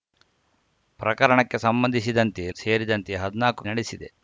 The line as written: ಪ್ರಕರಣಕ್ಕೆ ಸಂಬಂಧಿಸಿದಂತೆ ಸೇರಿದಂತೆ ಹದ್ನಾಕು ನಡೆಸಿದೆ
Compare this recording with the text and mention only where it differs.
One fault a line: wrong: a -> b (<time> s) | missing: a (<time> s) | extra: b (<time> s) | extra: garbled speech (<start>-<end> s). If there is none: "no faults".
no faults